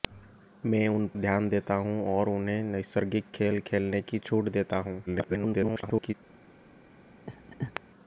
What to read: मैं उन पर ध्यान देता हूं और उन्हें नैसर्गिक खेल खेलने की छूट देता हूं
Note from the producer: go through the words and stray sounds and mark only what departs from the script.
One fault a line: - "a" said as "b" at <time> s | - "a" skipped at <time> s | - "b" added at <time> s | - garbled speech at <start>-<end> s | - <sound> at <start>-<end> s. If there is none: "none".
- "पर" skipped at 1.1 s
- garbled speech at 5.1-6.1 s
- laugh at 7.3-7.8 s